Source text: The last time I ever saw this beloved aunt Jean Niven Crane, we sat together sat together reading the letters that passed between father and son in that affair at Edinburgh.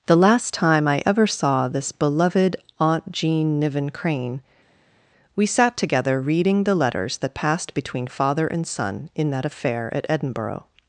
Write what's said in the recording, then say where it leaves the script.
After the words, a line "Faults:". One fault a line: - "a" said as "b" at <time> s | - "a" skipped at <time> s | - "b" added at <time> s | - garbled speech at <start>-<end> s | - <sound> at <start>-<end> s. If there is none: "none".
The last time I ever saw this beloved aunt Jean Niven Crane, we sat together reading the letters that passed between father and son in that affair at Edinburgh.
Faults:
- "sat together" skipped at 6.2 s